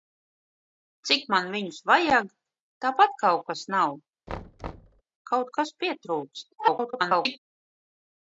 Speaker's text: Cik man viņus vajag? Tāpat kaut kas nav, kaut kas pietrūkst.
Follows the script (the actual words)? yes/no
no